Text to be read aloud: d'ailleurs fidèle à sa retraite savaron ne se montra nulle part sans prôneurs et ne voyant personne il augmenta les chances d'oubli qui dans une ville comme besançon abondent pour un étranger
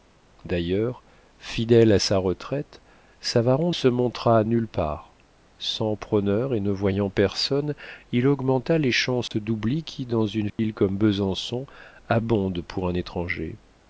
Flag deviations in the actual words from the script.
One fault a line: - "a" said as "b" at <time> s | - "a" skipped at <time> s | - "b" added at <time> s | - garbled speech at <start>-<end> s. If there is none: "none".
- "ne" skipped at 3.7 s